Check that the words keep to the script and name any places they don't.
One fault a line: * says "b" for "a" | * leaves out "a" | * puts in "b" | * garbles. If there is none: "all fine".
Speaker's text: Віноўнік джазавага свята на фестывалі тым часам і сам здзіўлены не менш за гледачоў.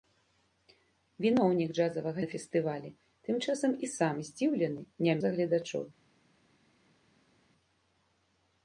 * leaves out "свята"
* leaves out "менш"